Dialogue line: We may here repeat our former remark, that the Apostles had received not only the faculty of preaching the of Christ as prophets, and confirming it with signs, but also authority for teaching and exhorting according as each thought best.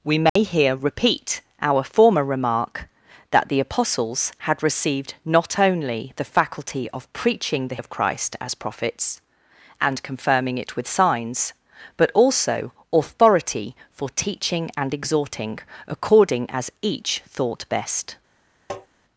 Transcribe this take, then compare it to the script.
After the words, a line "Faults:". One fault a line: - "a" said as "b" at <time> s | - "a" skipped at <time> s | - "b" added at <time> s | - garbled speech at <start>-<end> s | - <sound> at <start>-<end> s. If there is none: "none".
We may here repeat our former remark, that the Apostles had received not only the faculty of preaching the of Christ as prophets, and confirming it with signs, but also authority for teaching and exhorting according as each thought best.
Faults:
- dropout at 0.3-0.4 s
- tap at 18.7-18.9 s